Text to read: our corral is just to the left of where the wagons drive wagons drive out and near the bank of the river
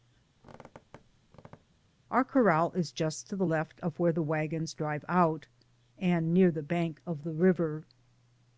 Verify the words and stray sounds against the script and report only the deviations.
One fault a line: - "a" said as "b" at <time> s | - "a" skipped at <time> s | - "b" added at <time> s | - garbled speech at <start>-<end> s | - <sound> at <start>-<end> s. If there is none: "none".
- squeak at 0.4-1.9 s
- "wagons drive" skipped at 5.0 s